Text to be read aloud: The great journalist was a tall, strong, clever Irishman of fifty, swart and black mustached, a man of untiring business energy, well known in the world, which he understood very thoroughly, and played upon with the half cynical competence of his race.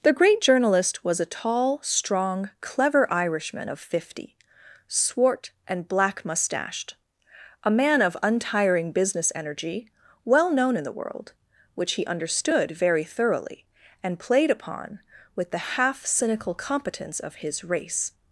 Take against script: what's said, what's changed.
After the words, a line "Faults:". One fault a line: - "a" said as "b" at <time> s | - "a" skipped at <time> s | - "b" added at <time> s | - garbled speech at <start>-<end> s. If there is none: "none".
The great journalist was a tall, strong, clever Irishman of fifty, swart and black mustached, a man of untiring business energy, well known in the world, which he understood very thoroughly, and played upon with the half cynical competence of his race.
Faults:
none